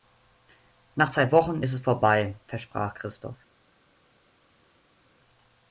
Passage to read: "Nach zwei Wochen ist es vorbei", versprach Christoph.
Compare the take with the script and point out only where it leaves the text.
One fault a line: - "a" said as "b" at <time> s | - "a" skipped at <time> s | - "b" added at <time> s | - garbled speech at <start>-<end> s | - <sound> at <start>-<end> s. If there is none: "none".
none